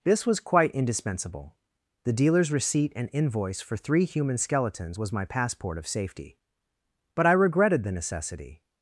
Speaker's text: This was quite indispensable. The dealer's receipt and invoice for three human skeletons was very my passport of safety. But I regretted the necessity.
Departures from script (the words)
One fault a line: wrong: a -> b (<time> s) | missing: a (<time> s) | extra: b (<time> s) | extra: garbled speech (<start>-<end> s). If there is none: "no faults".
missing: very (5.1 s)